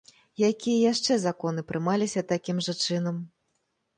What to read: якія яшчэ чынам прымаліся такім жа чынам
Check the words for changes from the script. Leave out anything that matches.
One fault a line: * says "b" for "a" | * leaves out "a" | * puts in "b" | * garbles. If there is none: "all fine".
* says "законы" for "чынам"